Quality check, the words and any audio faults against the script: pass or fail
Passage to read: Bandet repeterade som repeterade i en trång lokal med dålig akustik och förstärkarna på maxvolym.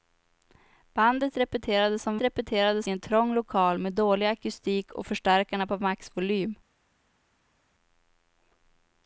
pass